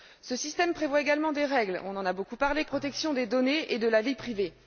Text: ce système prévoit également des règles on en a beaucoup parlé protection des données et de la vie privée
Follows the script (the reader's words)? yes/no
yes